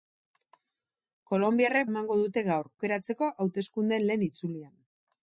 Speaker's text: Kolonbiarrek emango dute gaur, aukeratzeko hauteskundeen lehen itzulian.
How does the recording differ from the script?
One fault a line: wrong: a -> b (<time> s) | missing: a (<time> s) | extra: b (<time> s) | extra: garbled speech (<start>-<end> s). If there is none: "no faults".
no faults